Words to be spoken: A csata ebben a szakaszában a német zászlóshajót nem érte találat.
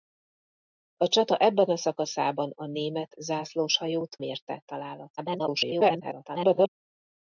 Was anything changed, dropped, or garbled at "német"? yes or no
no